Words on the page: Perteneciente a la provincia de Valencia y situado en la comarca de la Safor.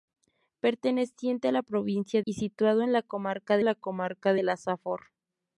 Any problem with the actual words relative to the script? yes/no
yes